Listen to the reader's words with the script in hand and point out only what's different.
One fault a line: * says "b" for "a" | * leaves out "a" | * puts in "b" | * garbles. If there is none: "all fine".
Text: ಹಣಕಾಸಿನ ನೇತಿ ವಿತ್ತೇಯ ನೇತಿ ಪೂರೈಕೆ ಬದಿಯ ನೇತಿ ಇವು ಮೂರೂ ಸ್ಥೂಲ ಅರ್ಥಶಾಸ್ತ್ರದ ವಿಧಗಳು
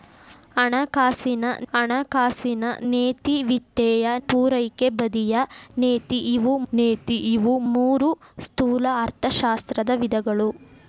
* puts in "ಹಣಕಾಸಿನ"
* leaves out "ನೇತಿ"
* puts in "ನೇತಿ ಇವು"